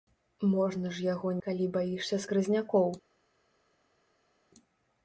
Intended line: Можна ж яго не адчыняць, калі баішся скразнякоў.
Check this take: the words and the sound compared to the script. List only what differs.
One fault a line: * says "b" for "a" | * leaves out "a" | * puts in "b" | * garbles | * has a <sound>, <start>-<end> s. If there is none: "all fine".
* leaves out "не адчыняць"